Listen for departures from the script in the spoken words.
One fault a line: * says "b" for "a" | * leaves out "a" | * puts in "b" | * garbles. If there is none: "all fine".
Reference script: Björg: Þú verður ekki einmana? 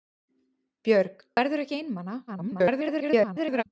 * leaves out "Þú"
* garbles